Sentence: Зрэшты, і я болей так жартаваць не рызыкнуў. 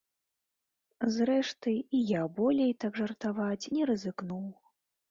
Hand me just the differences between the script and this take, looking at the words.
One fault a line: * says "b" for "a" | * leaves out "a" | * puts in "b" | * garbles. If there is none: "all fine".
all fine